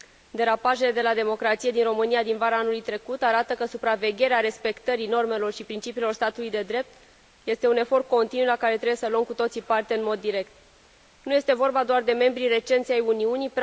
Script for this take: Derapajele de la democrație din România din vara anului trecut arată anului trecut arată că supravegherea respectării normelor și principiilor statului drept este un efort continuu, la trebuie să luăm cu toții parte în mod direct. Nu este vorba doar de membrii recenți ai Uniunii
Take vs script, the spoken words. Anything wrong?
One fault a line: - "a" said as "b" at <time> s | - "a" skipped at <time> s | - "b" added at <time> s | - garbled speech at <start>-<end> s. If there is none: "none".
- "anului trecut arată" skipped at 3.5 s
- "de" added at 6.5 s
- "care" added at 8.6 s